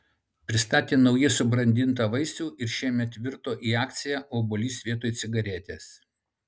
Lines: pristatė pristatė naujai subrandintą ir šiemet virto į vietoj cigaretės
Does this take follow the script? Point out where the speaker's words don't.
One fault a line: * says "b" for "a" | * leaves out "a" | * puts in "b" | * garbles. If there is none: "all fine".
* leaves out "pristatė"
* puts in "vaisių"
* puts in "akciją obuolys"